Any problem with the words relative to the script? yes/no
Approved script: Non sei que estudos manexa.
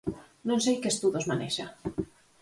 no